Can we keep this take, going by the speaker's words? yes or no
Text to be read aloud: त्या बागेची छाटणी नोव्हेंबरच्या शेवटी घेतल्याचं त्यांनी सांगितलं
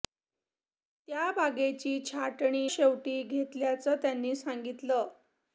no